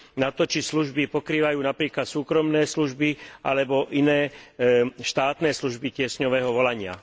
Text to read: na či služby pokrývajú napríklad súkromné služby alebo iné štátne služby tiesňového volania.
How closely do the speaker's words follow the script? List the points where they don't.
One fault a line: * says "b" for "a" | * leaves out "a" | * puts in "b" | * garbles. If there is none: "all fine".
* puts in "to"